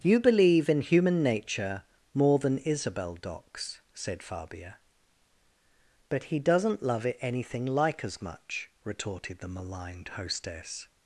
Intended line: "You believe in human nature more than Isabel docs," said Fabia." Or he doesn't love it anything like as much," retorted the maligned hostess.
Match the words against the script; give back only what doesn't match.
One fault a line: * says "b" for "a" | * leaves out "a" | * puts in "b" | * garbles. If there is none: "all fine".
* says "But" for "Or"